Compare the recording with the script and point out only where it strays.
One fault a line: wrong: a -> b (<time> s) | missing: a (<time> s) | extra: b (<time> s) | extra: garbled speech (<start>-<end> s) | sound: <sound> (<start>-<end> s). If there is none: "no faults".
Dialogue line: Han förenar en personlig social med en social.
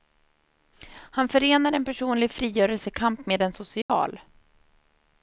wrong: social -> frigörelsekamp (2.3 s)
sound: dropout (3.8-3.9 s)